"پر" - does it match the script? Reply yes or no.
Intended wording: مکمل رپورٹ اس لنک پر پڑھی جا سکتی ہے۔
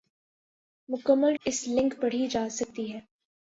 no